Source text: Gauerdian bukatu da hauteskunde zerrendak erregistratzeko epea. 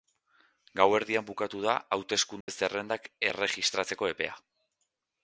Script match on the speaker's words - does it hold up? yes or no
yes